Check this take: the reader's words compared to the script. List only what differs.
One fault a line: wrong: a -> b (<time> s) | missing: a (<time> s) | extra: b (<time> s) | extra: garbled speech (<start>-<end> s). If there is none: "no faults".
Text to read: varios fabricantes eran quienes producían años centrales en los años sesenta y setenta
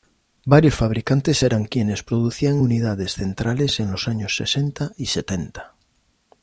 wrong: años -> unidades (2.6 s)